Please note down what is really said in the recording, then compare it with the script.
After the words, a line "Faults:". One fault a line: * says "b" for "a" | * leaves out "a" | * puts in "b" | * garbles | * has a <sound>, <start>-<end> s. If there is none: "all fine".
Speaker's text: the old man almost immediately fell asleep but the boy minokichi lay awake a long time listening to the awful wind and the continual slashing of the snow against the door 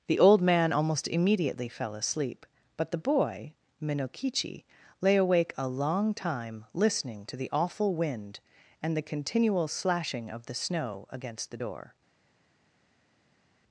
the old man almost immediately fell asleep but the boy minokichi lay awake a long time listening to the awful wind and the continual slashing of the snow against the door
Faults:
all fine